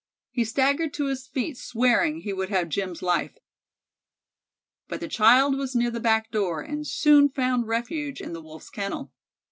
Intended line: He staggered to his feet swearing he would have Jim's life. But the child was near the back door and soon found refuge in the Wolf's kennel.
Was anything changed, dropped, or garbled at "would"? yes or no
no